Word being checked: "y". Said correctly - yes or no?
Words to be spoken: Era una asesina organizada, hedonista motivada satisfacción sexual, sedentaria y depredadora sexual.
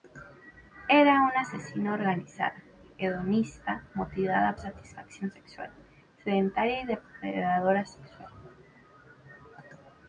yes